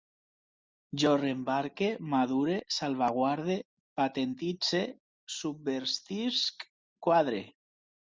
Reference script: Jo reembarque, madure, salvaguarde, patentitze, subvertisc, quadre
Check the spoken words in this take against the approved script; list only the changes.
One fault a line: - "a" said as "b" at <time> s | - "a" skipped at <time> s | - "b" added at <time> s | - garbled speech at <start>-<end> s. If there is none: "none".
none